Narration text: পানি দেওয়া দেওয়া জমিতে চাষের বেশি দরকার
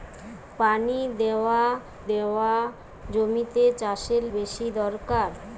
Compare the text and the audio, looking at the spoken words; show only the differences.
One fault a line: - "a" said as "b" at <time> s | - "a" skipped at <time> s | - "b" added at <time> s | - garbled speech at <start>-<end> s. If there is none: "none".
none